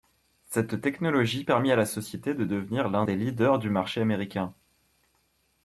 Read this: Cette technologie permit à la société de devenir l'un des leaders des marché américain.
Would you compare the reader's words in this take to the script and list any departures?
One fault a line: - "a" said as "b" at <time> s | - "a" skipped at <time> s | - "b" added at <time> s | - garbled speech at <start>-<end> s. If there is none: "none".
- "des" said as "du" at 3.6 s